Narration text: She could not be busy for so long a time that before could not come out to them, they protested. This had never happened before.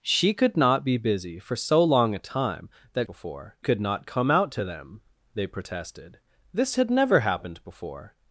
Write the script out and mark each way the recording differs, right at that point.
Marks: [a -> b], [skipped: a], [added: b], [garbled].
She could not be busy for so long a time that before could not come out to them, they protested. This had never happened before.